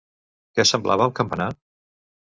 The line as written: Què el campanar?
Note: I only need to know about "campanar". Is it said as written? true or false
true